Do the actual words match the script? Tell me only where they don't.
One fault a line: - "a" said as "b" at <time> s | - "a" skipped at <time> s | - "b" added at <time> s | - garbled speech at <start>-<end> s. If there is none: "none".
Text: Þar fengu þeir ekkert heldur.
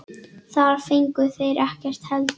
none